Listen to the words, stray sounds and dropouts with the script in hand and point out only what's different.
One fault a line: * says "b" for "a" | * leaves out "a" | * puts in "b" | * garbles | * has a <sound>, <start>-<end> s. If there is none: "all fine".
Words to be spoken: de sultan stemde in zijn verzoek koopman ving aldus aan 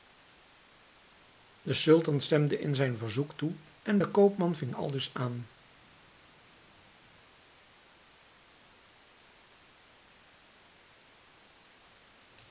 * puts in "toe en de"